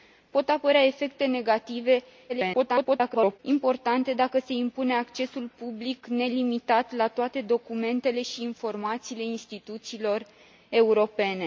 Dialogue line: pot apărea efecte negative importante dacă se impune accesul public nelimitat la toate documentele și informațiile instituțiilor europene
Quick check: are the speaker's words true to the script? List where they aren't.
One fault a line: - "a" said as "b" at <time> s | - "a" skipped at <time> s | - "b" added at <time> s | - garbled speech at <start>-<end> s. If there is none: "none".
- garbled speech at 2.3-3.4 s